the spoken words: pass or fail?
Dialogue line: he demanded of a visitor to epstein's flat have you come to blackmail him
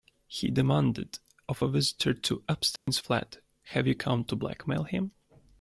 pass